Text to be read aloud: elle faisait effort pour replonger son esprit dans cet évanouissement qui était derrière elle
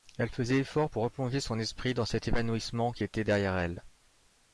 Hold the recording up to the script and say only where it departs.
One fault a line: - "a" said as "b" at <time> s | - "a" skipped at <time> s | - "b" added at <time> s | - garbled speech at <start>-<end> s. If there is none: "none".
none